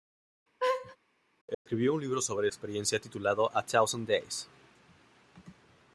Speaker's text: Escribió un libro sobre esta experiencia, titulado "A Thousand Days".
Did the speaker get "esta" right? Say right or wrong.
wrong